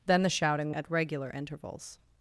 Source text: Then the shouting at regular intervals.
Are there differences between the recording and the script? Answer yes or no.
no